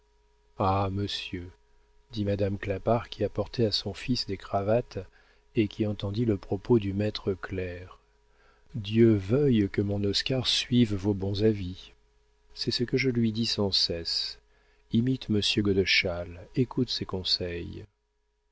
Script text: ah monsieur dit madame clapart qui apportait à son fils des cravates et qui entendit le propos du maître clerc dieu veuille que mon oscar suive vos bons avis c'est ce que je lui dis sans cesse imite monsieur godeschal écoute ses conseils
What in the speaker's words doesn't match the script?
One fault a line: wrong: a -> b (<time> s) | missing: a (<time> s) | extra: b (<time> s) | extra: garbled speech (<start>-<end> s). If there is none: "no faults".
no faults